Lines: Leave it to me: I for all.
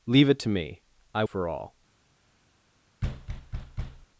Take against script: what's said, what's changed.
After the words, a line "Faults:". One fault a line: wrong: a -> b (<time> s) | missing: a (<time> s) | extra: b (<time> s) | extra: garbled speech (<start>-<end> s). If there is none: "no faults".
Leave it to me: I for all.
Faults:
no faults